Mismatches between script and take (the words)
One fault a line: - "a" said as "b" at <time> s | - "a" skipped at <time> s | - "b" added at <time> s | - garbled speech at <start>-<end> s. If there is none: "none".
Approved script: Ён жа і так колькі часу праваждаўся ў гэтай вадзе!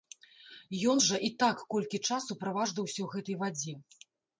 none